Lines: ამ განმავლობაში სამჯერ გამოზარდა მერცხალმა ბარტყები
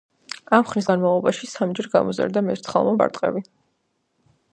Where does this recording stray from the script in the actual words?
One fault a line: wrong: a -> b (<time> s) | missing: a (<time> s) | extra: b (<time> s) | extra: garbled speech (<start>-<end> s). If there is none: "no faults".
extra: ხნის (0.7 s)